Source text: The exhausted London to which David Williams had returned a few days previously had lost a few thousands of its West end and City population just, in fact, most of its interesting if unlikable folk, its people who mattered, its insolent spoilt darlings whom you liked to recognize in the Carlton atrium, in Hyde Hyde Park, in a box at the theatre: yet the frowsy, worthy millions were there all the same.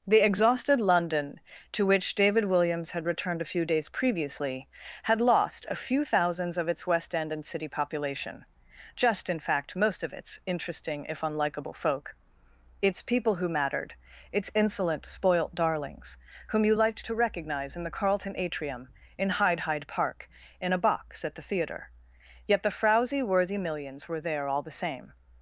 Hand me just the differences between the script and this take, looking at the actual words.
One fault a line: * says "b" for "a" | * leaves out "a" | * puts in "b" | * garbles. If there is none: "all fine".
all fine